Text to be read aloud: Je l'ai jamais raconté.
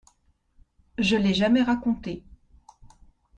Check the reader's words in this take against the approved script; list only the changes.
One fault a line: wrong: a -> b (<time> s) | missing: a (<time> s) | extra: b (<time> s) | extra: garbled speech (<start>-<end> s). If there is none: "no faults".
no faults